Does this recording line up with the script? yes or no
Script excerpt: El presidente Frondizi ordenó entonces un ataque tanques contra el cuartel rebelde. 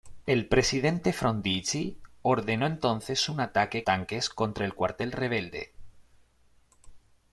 yes